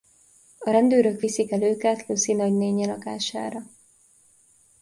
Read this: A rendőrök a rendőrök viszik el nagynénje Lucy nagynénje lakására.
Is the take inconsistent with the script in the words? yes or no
yes